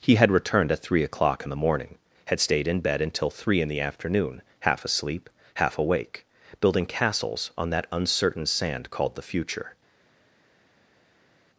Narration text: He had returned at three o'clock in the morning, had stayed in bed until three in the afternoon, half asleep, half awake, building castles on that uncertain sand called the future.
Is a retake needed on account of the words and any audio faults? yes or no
no